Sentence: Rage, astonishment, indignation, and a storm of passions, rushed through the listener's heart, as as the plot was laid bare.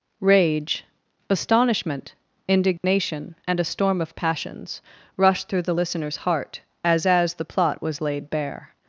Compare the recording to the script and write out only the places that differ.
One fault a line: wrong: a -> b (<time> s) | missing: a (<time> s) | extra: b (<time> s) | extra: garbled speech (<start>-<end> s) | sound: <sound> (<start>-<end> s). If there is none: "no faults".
sound: dropout (2.8-2.8 s)